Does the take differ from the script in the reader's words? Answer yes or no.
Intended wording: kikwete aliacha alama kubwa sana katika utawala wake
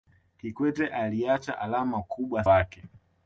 yes